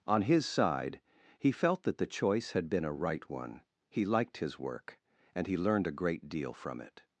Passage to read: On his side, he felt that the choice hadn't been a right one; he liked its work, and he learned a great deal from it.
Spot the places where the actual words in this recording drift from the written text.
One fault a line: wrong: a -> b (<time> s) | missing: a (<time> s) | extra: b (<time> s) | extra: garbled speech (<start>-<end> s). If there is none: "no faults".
wrong: hadn't -> had (2.5 s)
wrong: its -> his (4.4 s)